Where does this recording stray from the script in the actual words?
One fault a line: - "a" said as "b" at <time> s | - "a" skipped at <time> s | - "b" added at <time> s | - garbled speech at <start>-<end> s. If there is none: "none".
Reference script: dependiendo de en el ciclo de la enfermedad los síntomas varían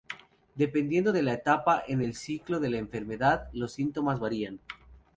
- "la etapa" added at 1.2 s